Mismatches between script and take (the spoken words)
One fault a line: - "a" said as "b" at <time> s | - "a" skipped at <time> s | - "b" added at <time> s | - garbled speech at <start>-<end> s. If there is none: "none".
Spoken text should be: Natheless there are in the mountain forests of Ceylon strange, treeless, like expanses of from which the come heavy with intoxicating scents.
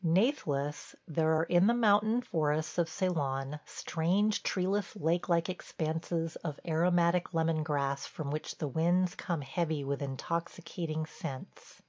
- "lake" added at 4.9 s
- "aromatic lemon grass" added at 6.7 s
- "winds" added at 8.7 s